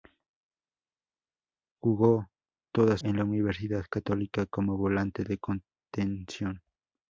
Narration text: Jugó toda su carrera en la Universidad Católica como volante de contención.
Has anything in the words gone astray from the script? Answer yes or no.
yes